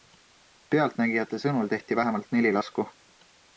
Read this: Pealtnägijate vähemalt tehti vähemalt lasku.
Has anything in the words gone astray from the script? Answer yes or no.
yes